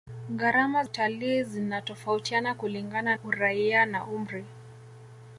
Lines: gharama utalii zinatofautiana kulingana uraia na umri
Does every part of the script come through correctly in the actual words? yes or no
yes